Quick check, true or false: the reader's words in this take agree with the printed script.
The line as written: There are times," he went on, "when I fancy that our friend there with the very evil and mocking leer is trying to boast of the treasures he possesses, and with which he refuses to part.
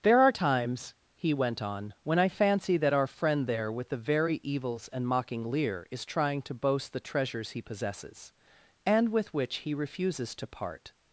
false